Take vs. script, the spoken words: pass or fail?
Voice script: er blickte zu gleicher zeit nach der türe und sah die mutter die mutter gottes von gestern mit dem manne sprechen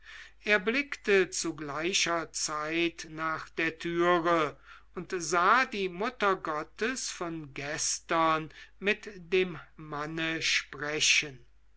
fail